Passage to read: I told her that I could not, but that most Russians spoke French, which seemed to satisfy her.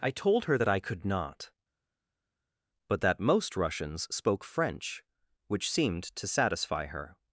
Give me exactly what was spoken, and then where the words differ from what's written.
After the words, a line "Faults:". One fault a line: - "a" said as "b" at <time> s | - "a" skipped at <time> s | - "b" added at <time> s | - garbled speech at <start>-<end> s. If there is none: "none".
I told her that I could not, but that most Russians spoke French, which seemed to satisfy her.
Faults:
none